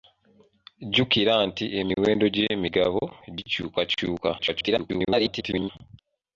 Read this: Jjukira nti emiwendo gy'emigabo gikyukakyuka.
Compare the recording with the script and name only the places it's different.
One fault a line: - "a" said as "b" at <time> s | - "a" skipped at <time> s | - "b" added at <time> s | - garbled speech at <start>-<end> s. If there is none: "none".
- garbled speech at 4.4-5.7 s